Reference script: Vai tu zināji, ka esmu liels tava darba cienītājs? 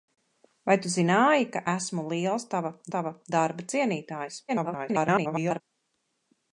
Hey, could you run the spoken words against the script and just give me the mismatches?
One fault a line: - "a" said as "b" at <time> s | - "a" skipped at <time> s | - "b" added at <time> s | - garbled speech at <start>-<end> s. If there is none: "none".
- "tava" added at 3.0 s
- garbled speech at 4.5-5.6 s